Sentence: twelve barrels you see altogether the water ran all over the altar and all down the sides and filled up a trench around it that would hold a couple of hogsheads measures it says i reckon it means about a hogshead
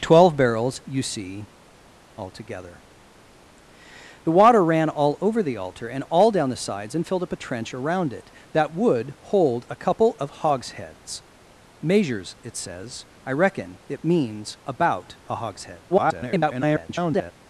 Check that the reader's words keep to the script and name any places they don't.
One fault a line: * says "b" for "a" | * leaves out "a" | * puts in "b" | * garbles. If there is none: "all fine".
* garbles